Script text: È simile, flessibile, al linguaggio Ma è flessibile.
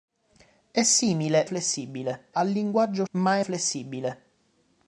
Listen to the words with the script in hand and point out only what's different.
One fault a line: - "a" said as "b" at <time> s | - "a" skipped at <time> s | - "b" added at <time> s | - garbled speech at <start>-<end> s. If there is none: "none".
none